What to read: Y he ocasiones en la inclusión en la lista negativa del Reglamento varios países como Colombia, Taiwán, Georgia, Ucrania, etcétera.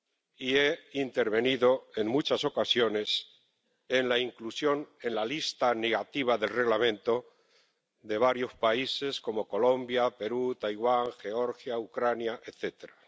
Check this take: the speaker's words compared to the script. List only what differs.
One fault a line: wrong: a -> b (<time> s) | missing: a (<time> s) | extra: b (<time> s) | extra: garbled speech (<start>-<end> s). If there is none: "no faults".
extra: intervenido en muchas (0.9 s)
extra: de (8.0 s)
extra: Perú (10.1 s)